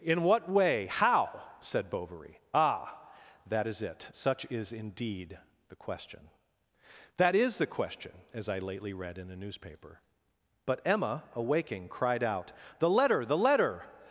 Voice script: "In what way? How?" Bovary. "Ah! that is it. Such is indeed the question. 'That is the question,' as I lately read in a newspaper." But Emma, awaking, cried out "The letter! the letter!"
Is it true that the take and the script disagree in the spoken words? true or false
true